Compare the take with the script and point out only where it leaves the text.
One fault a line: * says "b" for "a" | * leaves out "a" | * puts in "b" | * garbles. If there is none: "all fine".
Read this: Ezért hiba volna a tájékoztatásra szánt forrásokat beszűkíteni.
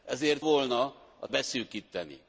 * leaves out "hiba"
* leaves out "tájékoztatásra szánt forrásokat"